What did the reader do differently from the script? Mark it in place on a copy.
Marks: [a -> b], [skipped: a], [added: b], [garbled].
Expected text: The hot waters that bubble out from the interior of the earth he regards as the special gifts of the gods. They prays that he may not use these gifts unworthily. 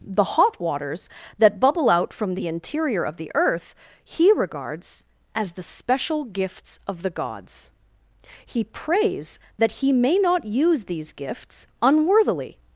The hot waters that bubble out from the interior of the earth he regards as the special gifts of the gods. [They -> He] prays that he may not use these gifts unworthily.